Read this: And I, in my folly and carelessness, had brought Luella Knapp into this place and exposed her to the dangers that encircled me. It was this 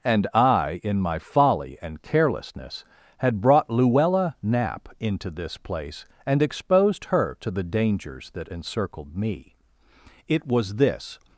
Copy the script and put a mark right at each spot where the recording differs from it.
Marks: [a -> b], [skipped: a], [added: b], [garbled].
And I, in my folly and carelessness, had brought Luella Knapp into this place and exposed her to the dangers that encircled me. It was this